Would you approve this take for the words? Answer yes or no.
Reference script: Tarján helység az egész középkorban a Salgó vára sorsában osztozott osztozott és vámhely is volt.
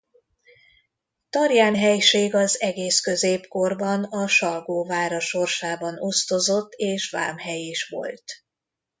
no